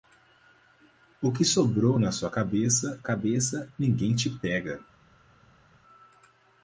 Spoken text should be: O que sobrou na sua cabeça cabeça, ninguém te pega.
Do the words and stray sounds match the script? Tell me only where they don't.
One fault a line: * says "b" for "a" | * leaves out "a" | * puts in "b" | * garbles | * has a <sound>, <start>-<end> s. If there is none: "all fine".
all fine